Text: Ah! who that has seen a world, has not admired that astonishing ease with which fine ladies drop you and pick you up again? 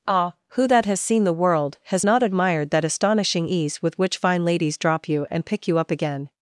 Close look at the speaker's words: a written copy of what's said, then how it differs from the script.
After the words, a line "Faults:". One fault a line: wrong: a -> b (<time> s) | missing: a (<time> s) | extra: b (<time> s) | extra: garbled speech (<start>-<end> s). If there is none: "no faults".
Ah! who that has seen the world, has not admired that astonishing ease with which fine ladies drop you and pick you up again?
Faults:
wrong: a -> the (1.2 s)